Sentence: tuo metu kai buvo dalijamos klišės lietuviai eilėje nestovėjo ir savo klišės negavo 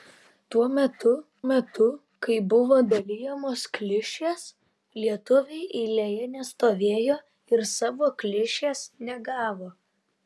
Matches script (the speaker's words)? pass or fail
fail